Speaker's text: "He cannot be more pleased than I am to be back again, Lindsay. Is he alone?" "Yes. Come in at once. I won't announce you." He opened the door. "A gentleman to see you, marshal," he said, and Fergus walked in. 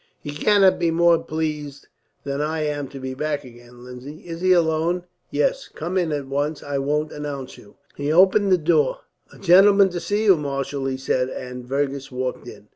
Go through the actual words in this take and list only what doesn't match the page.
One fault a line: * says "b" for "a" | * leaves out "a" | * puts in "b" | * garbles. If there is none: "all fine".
all fine